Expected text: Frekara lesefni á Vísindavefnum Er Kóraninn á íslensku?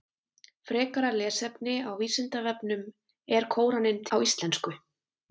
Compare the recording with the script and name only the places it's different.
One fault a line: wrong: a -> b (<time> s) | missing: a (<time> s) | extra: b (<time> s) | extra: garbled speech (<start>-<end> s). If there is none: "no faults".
no faults